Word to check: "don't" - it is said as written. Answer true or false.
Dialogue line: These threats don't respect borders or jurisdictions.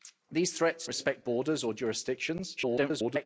false